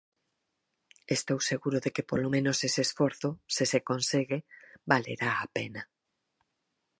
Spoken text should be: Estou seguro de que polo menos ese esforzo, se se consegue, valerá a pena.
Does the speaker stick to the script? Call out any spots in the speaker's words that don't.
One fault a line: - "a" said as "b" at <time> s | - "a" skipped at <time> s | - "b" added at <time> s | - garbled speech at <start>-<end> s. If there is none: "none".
none